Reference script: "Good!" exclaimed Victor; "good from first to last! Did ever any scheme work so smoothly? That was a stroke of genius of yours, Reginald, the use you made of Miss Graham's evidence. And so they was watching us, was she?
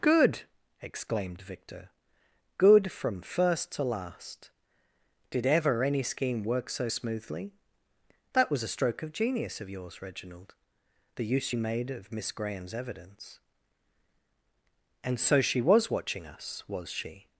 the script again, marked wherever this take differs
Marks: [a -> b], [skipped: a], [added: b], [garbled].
"Good!" exclaimed Victor; "good from first to last! Did ever any scheme work so smoothly? That was a stroke of genius of yours, Reginald, the use you made of Miss Graham's evidence. And so [they -> she] was watching us, was she?